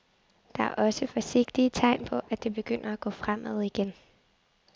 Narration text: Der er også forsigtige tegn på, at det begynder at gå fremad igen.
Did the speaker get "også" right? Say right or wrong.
right